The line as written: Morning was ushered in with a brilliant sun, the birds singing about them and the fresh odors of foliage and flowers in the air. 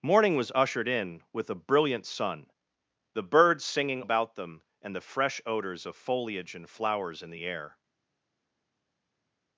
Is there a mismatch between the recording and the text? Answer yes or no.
no